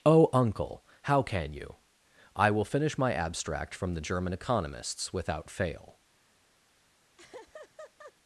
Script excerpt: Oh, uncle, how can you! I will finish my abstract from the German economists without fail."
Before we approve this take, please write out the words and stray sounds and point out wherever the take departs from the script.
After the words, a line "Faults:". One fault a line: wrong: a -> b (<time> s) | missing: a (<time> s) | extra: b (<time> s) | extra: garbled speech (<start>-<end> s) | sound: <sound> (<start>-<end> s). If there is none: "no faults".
Oh, uncle, how can you! I will finish my abstract from the German economists without fail."
Faults:
sound: laugh (7.2-8.1 s)